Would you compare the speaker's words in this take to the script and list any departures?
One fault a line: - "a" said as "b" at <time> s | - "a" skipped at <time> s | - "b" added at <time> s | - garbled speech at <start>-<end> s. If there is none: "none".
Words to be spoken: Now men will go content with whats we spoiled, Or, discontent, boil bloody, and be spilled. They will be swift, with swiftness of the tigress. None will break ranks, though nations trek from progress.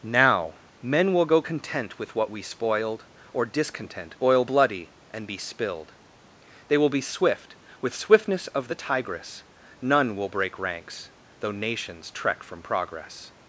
- "whats" said as "what" at 2.1 s